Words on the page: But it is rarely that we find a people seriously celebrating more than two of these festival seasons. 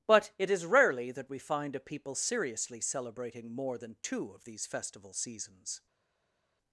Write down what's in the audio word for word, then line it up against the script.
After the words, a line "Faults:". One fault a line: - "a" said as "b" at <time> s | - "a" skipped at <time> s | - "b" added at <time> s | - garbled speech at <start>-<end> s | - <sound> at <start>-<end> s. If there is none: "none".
But it is rarely that we find a people seriously celebrating more than two of these festival seasons.
Faults:
none